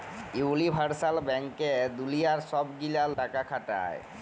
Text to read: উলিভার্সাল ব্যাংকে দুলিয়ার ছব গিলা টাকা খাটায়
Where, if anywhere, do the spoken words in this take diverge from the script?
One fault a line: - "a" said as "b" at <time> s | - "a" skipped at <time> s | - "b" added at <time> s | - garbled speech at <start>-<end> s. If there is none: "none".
none